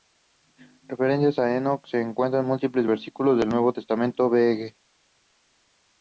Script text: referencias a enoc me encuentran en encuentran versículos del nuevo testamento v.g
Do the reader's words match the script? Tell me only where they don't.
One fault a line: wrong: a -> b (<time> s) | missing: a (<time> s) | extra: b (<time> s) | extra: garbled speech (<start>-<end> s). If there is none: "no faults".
wrong: me -> se (1.9 s)
wrong: encuentran -> múltiples (2.5 s)